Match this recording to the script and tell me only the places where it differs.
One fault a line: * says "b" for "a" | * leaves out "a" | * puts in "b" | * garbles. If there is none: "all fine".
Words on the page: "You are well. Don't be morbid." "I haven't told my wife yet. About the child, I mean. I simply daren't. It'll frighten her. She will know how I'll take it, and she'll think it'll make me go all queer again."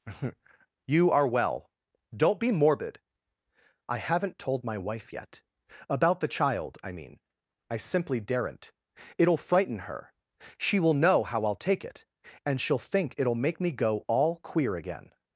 all fine